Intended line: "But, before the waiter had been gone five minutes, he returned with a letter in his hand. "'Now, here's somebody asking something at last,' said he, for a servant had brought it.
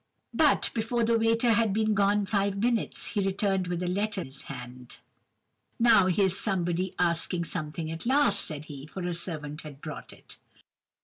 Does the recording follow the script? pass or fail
fail